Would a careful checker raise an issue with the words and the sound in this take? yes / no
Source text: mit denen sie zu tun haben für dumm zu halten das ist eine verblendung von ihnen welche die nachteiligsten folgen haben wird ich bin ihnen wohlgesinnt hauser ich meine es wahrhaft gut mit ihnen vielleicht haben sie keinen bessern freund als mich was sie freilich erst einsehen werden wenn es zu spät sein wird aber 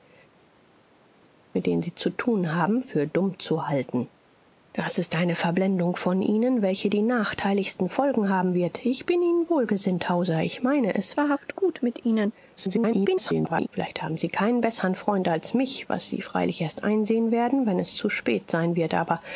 yes